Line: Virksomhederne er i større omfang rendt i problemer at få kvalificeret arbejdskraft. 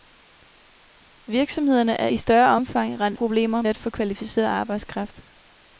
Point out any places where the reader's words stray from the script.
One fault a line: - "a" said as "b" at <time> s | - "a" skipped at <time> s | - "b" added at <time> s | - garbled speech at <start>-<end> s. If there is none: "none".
none